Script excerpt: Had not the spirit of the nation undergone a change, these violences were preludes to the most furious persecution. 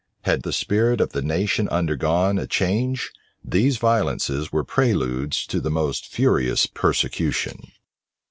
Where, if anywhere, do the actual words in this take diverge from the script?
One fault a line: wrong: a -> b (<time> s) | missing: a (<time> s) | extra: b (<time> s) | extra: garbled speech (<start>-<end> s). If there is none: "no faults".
missing: not (0.4 s)